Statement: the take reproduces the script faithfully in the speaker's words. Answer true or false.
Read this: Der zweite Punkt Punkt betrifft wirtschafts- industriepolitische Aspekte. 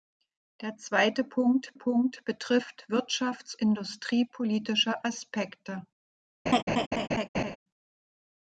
true